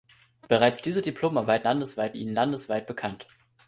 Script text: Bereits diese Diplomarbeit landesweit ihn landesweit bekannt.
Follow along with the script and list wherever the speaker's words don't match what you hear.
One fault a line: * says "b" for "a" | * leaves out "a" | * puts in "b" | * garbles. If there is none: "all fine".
all fine